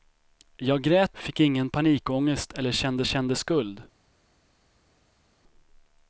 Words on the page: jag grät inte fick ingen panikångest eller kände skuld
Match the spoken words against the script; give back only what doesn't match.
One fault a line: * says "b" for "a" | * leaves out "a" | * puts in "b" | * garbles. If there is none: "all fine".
* leaves out "inte"
* puts in "kände"